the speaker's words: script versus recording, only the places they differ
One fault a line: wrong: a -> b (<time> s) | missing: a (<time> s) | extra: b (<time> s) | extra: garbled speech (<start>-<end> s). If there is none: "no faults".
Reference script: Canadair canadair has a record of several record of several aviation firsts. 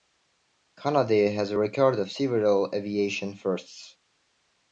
missing: canadair (1.3 s)
missing: record of several (2.7 s)